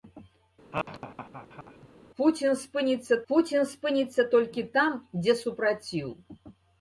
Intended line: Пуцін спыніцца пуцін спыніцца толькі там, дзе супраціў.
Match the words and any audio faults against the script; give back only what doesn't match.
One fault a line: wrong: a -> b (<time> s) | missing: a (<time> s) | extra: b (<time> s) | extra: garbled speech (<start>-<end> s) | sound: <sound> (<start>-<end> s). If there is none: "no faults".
sound: laugh (0.7-1.9 s)